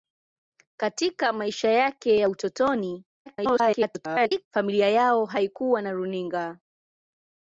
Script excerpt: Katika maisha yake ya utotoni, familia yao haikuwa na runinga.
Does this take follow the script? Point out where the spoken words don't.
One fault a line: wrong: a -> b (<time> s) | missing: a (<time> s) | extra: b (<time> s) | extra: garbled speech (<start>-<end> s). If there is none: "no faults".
extra: garbled speech (3.3-4.5 s)